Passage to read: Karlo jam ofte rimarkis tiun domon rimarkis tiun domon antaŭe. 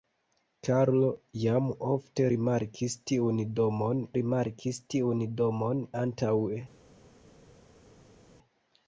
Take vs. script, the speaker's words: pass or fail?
pass